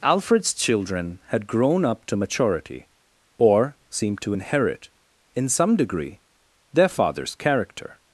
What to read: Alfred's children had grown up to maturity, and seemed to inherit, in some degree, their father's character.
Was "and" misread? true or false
true